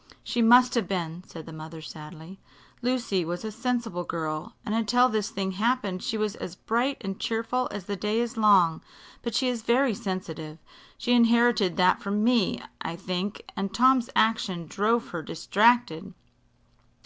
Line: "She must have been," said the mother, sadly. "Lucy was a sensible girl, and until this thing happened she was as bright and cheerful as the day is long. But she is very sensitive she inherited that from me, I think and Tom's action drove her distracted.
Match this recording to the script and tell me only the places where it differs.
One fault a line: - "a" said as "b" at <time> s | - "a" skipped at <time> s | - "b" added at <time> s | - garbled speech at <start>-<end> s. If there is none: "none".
none